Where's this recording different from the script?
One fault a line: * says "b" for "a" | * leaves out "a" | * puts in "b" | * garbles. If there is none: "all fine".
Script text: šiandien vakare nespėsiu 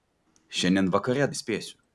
all fine